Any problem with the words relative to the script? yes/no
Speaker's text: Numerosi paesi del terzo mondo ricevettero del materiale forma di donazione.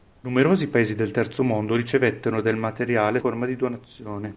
no